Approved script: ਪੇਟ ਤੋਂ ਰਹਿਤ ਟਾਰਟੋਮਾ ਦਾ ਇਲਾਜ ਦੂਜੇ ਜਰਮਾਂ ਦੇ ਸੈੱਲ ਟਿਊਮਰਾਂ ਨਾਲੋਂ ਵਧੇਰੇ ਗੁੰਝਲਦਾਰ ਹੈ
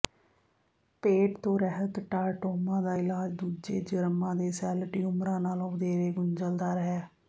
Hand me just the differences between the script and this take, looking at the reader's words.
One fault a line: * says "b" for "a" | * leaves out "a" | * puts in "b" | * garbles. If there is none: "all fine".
all fine